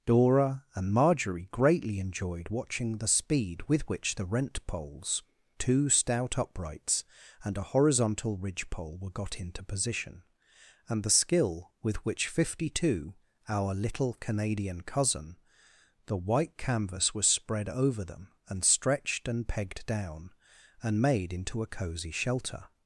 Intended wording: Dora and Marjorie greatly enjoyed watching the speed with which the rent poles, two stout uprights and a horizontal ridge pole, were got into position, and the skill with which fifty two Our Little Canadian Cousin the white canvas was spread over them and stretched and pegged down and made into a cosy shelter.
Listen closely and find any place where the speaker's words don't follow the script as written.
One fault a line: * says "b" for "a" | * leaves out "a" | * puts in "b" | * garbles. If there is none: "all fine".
all fine